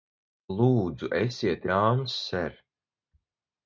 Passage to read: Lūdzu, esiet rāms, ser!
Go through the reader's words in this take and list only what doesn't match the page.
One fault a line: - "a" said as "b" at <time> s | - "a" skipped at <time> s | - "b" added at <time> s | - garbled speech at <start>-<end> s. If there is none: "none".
none